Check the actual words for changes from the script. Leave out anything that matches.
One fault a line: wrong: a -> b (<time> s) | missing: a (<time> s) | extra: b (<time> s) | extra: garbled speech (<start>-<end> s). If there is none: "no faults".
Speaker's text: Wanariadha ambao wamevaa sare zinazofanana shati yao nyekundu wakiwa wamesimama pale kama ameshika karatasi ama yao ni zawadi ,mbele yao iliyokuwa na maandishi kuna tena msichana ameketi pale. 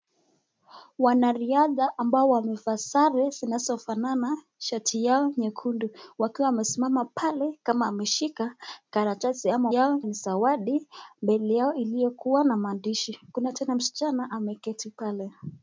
no faults